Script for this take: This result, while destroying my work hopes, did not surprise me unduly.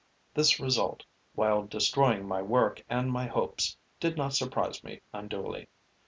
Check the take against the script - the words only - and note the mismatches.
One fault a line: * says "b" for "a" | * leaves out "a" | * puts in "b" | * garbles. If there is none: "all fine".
* puts in "and my"